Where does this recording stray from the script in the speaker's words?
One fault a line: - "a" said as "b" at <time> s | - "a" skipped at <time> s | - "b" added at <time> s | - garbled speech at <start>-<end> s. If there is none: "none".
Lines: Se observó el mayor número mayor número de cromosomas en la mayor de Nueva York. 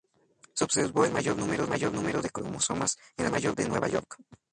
none